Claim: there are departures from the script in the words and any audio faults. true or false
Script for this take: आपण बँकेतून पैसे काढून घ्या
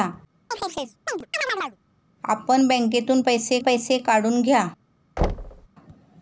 true